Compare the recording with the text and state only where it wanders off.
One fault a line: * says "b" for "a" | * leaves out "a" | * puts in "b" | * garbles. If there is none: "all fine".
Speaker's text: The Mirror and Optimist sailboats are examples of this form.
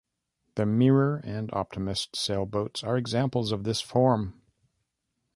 all fine